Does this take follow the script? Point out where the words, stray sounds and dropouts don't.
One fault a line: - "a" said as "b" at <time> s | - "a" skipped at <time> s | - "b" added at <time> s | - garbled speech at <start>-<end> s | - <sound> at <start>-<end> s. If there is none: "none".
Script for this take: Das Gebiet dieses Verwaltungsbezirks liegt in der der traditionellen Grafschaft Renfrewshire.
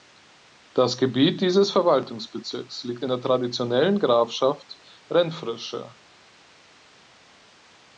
- "der" skipped at 3.2 s